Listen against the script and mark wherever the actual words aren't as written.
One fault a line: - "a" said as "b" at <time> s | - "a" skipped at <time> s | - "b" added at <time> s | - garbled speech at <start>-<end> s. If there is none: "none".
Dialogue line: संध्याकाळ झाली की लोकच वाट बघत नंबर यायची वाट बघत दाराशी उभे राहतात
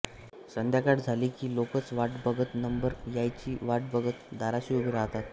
none